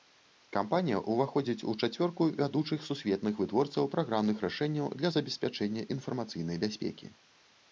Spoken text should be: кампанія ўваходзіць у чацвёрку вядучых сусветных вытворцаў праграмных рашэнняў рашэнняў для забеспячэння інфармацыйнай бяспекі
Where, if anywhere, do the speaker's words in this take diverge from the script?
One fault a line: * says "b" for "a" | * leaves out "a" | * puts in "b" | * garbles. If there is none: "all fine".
* leaves out "рашэнняў"